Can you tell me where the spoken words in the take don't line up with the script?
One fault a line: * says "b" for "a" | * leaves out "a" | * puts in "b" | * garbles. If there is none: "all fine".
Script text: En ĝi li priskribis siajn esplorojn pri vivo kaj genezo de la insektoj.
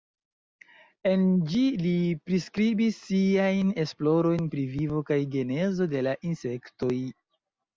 all fine